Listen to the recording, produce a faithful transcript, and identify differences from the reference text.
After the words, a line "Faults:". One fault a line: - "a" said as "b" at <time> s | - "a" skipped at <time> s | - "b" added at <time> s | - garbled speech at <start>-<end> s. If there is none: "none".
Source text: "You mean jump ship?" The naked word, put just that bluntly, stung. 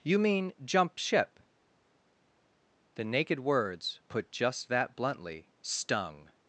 "You mean jump ship?" The naked words, put just that bluntly, stung.
Faults:
- "word" said as "words" at 3.4 s